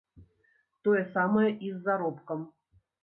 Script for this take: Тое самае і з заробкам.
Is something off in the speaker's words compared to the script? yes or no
no